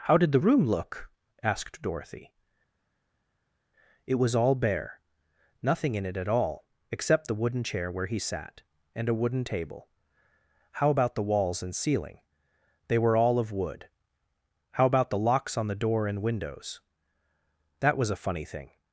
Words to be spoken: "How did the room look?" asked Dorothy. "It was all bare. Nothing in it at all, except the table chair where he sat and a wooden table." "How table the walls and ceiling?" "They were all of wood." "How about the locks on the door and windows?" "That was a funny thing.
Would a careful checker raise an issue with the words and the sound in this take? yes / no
yes